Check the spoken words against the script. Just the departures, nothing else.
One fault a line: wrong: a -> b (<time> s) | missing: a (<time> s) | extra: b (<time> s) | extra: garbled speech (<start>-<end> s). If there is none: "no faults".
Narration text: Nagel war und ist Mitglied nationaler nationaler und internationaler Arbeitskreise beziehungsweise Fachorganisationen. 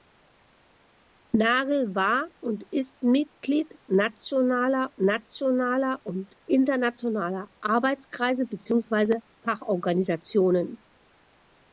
no faults